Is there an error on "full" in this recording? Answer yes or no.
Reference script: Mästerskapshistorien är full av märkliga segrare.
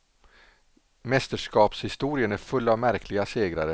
no